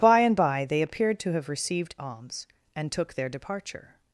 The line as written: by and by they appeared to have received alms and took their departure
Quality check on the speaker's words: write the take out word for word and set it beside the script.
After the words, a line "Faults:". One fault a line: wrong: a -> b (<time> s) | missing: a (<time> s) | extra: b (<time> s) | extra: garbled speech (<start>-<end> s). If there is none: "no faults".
by and by they appeared to have received alms and took their departure
Faults:
no faults